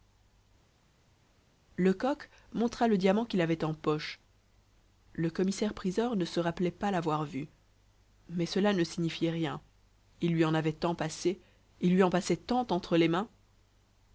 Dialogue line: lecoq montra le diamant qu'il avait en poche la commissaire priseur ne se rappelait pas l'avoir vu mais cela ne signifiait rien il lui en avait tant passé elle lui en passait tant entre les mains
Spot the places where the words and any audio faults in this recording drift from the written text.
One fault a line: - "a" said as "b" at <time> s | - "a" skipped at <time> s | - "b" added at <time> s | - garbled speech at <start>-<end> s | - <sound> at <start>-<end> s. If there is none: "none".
- "la" said as "le" at 5.1 s
- "elle" said as "il" at 11.8 s